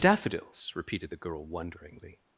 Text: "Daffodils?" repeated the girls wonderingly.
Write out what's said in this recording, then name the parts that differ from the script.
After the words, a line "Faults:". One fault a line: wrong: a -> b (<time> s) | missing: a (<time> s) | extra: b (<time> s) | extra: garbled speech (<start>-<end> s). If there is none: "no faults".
"Daffodils?" repeated the girl wonderingly.
Faults:
wrong: girls -> girl (1.2 s)